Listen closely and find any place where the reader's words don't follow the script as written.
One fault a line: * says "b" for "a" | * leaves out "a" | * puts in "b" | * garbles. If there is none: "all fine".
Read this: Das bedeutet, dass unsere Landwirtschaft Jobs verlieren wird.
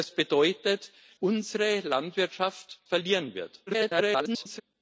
* leaves out "dass"
* leaves out "Jobs"
* garbles